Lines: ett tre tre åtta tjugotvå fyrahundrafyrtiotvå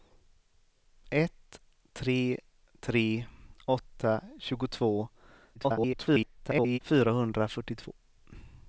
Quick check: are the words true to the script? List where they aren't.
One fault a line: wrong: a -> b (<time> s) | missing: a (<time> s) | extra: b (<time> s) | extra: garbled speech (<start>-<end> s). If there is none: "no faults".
extra: garbled speech (5.5-6.8 s)